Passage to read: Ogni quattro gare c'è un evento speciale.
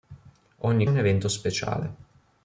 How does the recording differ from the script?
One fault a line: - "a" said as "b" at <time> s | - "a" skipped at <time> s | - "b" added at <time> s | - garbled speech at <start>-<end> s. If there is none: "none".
- "quattro gare c'è" skipped at 0.9 s